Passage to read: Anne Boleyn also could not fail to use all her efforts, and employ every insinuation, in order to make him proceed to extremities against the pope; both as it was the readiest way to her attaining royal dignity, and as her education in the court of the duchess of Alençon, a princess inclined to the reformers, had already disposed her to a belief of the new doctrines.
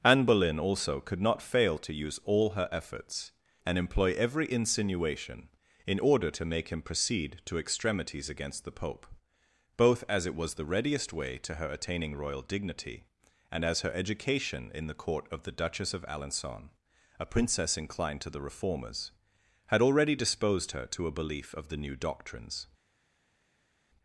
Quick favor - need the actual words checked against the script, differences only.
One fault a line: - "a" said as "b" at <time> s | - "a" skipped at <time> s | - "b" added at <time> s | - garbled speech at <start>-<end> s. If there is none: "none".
none